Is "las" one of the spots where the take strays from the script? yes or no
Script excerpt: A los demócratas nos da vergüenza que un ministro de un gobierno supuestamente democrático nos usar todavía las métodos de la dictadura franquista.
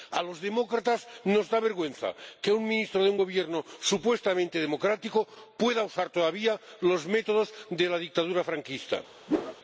yes